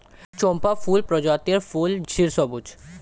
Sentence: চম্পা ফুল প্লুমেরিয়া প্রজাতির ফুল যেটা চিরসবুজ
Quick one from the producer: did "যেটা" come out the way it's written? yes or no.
no